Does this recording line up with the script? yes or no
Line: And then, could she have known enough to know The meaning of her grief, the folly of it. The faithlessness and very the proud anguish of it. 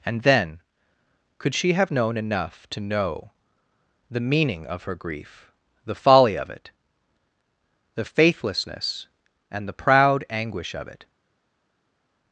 no